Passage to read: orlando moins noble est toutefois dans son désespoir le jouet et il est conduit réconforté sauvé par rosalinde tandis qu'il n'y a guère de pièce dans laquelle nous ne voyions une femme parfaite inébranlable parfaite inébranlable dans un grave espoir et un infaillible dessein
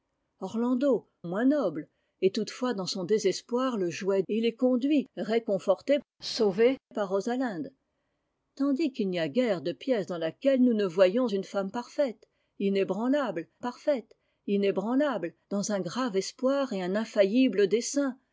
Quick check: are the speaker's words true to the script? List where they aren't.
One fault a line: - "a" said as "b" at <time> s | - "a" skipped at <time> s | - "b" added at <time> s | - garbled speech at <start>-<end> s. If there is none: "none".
none